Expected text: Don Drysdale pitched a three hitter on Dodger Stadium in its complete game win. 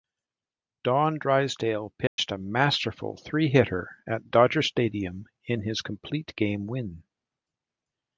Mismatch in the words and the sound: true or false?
true